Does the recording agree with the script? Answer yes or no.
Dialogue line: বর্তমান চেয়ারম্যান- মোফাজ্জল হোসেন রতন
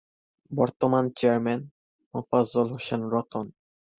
yes